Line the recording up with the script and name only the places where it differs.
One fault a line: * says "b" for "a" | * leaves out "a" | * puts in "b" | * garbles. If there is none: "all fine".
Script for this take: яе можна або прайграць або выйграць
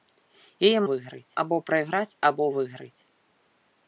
* says "выйграць" for "можна"